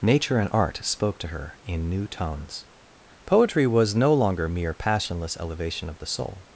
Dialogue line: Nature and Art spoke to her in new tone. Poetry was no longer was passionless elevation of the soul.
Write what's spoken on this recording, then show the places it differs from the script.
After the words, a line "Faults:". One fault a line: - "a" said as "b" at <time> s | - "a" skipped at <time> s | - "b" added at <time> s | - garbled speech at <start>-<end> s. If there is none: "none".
Nature and Art spoke to her in new tones. Poetry was no longer mere passionless elevation of the soul.
Faults:
- "tone" said as "tones" at 2.1 s
- "was" said as "mere" at 4.5 s